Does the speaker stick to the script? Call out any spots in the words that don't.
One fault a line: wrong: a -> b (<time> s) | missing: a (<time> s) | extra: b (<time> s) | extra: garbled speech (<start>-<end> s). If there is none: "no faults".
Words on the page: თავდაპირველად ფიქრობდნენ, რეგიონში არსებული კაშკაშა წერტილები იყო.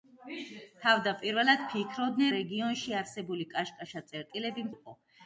no faults